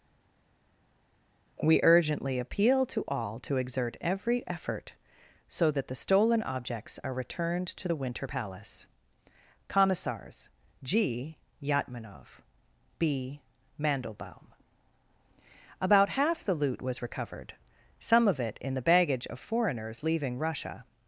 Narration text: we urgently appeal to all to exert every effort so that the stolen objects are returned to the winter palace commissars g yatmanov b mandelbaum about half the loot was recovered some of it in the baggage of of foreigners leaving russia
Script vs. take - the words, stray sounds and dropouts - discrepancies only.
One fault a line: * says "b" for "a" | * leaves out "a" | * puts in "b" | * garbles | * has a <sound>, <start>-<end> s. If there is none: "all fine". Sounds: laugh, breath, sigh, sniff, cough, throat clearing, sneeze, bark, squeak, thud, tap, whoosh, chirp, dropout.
* leaves out "of"